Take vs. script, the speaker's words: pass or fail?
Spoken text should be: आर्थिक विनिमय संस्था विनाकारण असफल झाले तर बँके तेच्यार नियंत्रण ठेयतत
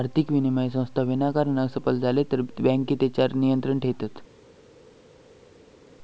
pass